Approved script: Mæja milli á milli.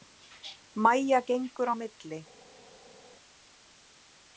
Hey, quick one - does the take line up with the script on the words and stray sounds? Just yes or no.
no